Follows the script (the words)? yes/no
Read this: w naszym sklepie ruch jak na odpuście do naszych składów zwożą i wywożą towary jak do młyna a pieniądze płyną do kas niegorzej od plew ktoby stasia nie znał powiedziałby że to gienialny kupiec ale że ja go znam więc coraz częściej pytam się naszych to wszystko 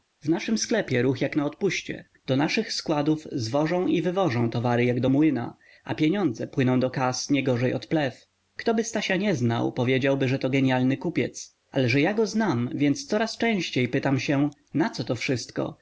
no